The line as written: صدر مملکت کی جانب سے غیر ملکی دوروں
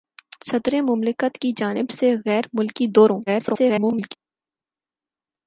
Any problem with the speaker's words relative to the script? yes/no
yes